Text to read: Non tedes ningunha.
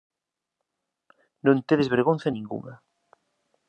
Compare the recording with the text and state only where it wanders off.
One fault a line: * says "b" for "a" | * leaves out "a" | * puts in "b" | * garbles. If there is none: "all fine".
* puts in "vergonza"